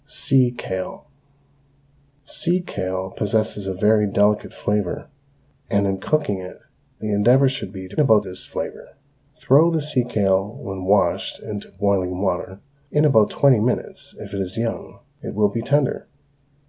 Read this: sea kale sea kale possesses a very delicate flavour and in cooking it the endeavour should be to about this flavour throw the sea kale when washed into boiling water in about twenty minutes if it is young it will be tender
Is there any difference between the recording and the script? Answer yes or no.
no